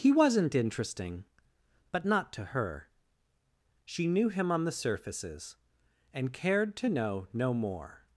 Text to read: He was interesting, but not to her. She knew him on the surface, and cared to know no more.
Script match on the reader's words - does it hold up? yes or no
no